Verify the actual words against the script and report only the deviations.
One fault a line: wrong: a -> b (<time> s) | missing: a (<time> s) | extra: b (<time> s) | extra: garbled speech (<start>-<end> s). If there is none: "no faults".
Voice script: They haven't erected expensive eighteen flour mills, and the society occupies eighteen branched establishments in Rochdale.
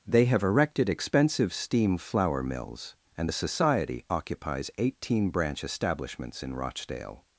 wrong: haven't -> have (0.2 s)
wrong: eighteen -> steam (1.5 s)
wrong: branched -> branch (5.3 s)